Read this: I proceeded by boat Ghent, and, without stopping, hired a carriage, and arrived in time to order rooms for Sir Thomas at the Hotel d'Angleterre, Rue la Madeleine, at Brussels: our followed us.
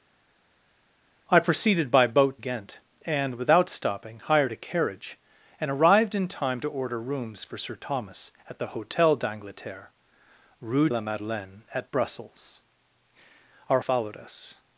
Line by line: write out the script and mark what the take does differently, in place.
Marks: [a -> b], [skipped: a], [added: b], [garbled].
I proceeded by boat Ghent, and, without stopping, hired a carriage, and arrived in time to order rooms for Sir Thomas at the Hotel d'Angleterre, Rue la Madeleine, at Brussels: our followed us.